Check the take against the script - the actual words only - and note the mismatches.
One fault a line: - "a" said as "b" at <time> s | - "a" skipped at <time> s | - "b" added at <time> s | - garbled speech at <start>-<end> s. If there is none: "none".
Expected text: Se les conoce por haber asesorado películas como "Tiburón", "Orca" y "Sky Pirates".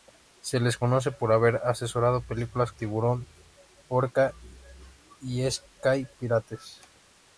- "como" skipped at 2.7 s